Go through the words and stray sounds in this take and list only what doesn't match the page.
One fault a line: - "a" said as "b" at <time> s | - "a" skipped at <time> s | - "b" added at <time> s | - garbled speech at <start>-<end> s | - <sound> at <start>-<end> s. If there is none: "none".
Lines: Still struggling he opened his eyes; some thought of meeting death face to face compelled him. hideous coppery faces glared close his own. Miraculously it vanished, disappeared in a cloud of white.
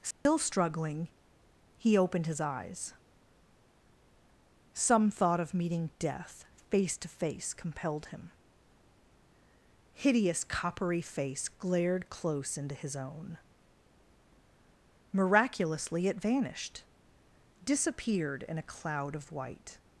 - dropout at 0.1-0.3 s
- "faces" said as "face" at 11.0 s
- "into" added at 12.6 s